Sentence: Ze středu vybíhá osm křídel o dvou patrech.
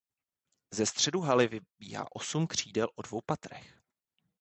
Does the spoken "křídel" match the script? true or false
true